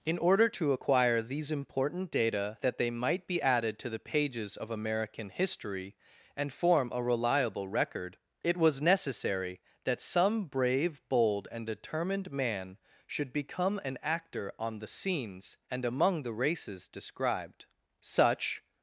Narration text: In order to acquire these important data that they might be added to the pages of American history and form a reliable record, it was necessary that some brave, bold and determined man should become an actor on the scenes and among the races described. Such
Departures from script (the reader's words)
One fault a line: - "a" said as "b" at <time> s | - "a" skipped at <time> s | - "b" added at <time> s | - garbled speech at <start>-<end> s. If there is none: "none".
none